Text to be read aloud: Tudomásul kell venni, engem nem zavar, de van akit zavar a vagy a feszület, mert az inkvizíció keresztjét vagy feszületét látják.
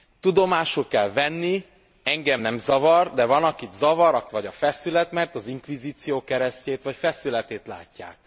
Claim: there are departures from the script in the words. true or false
false